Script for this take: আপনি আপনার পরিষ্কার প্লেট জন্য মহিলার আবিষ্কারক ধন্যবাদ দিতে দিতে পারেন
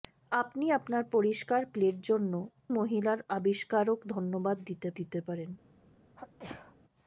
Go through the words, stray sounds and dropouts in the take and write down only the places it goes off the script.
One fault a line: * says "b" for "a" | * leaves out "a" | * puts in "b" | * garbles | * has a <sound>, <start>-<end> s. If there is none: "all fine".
* has a sneeze, 6.2-6.8 s